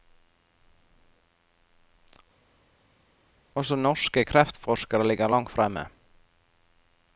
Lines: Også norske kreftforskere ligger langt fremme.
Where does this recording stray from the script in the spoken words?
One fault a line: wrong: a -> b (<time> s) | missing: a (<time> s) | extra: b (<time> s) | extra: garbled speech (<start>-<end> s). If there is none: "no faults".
no faults